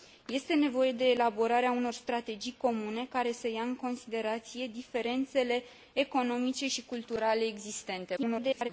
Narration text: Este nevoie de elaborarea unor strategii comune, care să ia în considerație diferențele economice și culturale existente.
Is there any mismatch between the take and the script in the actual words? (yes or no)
yes